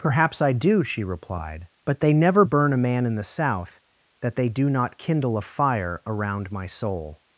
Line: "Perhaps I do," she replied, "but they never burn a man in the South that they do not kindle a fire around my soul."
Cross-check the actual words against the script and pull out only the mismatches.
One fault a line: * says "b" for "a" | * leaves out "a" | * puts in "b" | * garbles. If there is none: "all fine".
all fine